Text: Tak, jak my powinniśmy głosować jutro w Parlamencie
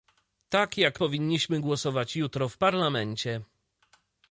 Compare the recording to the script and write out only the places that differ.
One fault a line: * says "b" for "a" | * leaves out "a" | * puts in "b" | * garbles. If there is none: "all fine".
* leaves out "my"